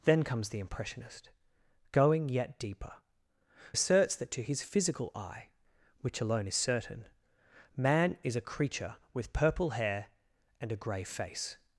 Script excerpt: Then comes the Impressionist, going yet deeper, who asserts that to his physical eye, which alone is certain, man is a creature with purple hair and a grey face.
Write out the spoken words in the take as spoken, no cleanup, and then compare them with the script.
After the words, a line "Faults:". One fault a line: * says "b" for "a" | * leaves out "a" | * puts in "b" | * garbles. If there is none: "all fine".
Then comes the Impressionist, going yet deeper, asserts that to his physical eye, which alone is certain, man is a creature with purple hair and a grey face.
Faults:
* leaves out "who"